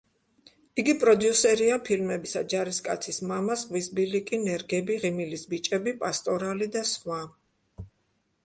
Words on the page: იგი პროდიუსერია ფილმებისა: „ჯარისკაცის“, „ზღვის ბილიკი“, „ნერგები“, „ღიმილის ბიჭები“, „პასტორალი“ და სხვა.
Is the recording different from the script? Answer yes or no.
yes